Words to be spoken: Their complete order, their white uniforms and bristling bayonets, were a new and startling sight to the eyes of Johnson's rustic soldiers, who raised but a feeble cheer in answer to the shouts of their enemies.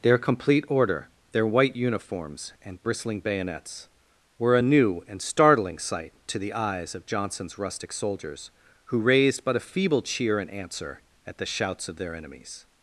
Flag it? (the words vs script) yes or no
yes